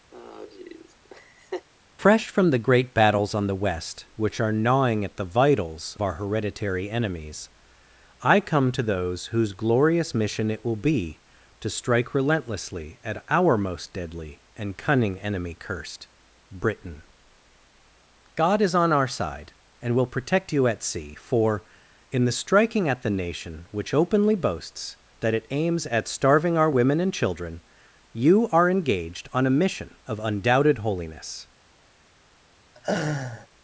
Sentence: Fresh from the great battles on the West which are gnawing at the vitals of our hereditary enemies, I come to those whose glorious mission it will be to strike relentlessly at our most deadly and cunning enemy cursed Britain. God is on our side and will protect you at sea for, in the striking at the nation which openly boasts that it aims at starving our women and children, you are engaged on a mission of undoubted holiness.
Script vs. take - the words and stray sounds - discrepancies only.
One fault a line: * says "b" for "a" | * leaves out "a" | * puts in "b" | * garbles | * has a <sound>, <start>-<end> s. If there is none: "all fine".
* has a laugh, 0.1-1.7 s
* leaves out "of"
* has a laugh, 32.7-33.5 s